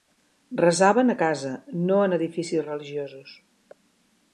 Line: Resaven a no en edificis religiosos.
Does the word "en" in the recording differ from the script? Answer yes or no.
no